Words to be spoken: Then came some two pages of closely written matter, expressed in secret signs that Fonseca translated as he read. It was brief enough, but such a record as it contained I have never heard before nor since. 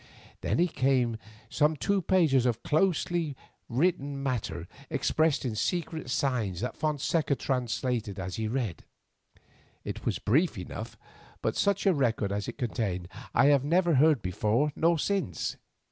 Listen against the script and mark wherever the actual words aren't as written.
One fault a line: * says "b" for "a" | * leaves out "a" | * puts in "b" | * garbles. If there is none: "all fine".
all fine